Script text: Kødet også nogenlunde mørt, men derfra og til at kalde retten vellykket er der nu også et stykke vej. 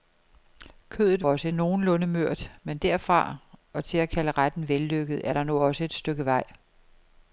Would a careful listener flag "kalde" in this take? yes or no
no